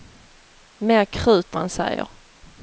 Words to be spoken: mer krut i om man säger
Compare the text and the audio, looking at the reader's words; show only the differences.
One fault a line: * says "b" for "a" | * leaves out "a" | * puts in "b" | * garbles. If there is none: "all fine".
* leaves out "i om"